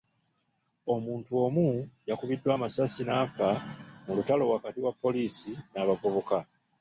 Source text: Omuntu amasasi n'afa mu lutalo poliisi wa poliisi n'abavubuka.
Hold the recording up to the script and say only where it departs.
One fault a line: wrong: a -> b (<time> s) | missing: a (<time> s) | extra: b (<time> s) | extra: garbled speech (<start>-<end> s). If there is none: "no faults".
extra: omu yakubiddwa (1.4 s)
wrong: poliisi -> wakati (4.5 s)